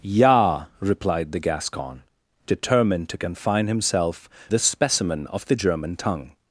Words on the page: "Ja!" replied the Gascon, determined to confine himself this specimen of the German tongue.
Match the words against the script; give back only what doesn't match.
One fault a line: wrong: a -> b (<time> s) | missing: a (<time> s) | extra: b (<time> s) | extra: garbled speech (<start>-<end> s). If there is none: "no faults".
no faults